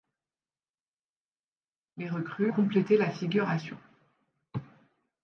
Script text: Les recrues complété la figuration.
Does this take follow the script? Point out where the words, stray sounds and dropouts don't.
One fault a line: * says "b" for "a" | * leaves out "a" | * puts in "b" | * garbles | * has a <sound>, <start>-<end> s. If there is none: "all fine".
all fine